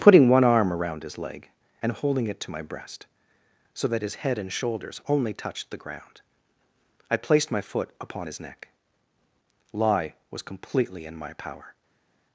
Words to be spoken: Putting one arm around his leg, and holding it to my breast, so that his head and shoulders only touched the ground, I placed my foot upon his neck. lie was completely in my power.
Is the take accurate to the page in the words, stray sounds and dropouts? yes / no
yes